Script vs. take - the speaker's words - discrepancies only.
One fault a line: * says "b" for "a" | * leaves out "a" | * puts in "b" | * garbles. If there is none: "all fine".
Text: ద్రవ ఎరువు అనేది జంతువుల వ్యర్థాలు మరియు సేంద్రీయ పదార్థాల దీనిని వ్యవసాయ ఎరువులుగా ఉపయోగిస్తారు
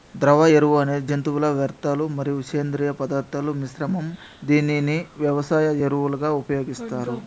* puts in "మిశ్రమం"